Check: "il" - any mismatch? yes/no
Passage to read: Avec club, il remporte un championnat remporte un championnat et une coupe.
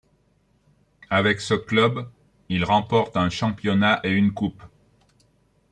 no